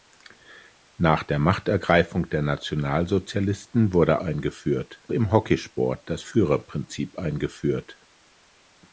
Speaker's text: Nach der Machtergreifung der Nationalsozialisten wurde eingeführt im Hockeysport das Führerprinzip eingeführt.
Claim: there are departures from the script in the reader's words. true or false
false